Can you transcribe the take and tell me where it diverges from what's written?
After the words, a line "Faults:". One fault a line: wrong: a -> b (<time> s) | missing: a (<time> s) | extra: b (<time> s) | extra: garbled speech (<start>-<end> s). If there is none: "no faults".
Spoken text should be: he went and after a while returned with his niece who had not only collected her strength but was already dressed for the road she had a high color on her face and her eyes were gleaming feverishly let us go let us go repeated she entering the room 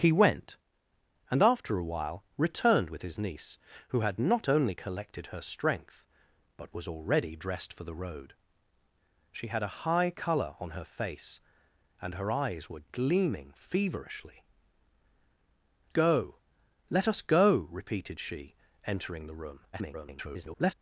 he went and after a while returned with his niece who had not only collected her strength but was already dressed for the road she had a high color on her face and her eyes were gleaming feverishly go let us go repeated she entering the room [garbled]
Faults:
missing: let us (14.4 s)
extra: garbled speech (19.7-20.7 s)